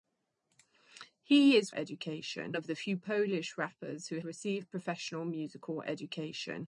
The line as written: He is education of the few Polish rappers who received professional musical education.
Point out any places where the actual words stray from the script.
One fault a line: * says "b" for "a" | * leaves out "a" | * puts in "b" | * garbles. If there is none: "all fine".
all fine